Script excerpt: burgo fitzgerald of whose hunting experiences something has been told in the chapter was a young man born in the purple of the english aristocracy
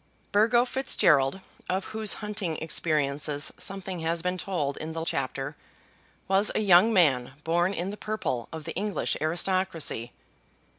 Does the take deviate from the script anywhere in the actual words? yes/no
no